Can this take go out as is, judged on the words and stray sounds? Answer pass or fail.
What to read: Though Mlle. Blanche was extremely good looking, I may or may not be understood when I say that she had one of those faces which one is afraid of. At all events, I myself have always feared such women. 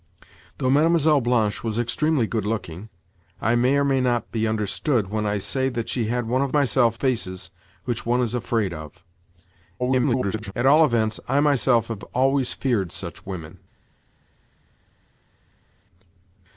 fail